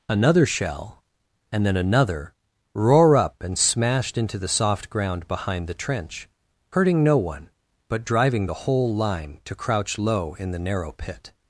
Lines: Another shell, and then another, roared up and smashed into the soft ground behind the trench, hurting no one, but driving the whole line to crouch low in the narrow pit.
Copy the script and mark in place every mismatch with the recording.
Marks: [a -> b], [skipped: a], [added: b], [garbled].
Another shell, and then another, [roared -> roar] up and smashed into the soft ground behind the trench, hurting no one, but driving the whole line to crouch low in the narrow pit.